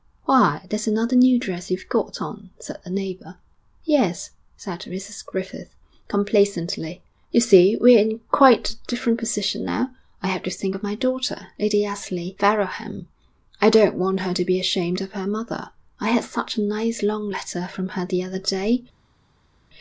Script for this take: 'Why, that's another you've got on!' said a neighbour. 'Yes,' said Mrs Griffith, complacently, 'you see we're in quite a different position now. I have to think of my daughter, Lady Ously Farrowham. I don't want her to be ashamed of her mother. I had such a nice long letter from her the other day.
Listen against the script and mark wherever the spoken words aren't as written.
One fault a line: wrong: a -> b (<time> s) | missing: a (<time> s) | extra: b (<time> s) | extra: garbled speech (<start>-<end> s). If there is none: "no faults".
extra: new dress (1.1 s)